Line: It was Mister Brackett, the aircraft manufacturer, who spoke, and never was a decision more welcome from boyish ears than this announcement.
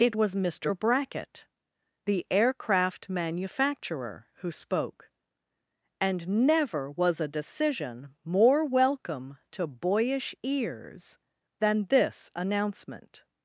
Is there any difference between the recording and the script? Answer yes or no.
yes